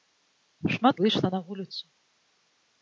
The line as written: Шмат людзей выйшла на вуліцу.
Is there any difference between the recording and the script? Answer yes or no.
yes